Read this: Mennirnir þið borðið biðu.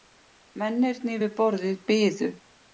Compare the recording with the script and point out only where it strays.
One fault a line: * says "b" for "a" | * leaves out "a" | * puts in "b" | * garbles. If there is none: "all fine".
* says "við" for "þið"